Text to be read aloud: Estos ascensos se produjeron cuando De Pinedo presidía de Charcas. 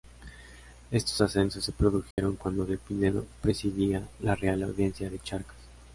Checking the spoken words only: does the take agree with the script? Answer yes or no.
no